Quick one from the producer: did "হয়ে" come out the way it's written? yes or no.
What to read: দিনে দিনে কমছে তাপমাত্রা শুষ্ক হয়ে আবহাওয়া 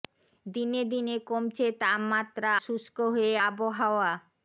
yes